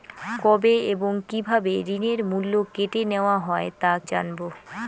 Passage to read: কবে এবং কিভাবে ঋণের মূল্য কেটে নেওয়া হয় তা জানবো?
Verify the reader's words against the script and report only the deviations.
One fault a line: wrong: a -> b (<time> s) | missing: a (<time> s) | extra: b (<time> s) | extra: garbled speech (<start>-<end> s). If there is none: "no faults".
no faults